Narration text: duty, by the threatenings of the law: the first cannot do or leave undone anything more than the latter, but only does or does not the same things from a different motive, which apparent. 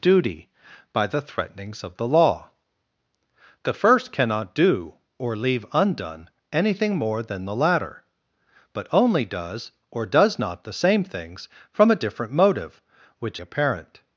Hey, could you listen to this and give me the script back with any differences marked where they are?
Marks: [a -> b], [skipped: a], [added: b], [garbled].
duty, by the threatenings of the law: the first cannot do or leave undone anything more than the latter, but only does or does not the same things from a different motive, which apparent.